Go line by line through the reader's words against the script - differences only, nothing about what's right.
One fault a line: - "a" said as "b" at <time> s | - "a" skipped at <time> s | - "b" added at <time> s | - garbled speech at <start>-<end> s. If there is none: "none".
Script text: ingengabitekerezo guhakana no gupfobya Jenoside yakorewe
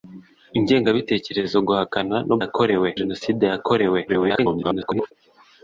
- "gupfobya" said as "yakorewe" at 2.4 s
- garbled speech at 4.1-5.1 s